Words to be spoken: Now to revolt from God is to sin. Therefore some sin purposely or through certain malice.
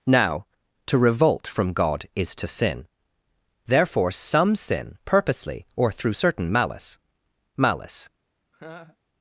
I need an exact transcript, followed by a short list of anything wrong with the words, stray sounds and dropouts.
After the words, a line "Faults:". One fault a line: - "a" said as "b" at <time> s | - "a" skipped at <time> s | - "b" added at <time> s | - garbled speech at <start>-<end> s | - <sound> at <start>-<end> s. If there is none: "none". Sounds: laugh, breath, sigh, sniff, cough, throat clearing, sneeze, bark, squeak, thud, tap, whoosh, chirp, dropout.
Now to revolt from God is to sin. Therefore some sin purposely or through certain malice malice.
Faults:
- "malice" added at 7.6 s
- laugh at 8.5-9.0 s